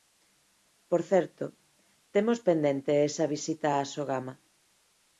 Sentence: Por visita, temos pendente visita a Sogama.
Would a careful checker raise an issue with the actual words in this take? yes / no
yes